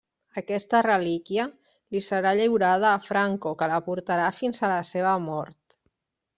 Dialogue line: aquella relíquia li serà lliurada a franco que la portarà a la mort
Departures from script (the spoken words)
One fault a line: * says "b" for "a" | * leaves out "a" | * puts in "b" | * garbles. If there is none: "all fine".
* says "aquesta" for "aquella"
* puts in "fins"
* puts in "seva"